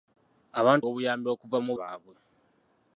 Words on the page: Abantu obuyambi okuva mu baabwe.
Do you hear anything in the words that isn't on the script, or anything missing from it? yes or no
no